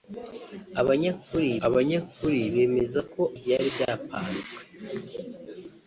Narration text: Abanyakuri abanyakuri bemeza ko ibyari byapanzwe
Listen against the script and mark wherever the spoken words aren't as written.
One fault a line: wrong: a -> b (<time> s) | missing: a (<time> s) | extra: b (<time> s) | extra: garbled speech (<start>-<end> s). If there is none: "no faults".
no faults